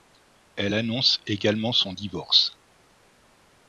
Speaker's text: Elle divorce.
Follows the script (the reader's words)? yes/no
no